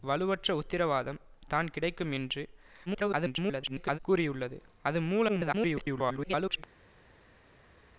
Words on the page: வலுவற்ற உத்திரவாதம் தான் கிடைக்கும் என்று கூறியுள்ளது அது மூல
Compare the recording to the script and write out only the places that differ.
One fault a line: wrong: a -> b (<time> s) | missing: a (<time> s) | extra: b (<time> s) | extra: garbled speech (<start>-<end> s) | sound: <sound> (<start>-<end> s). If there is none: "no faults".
extra: garbled speech (2.9-4.0 s)
extra: garbled speech (5.3-6.6 s)